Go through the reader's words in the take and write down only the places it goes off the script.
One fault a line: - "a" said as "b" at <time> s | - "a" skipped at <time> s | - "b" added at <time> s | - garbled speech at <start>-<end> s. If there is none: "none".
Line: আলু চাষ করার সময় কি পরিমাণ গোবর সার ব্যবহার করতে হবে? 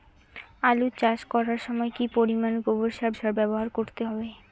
- "সার" added at 3.1 s